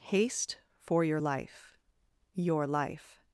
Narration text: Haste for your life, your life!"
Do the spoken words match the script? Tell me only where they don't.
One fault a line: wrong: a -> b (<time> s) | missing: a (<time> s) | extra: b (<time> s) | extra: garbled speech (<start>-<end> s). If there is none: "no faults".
no faults